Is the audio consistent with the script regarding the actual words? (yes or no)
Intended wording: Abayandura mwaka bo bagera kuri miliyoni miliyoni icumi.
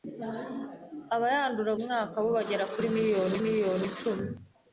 yes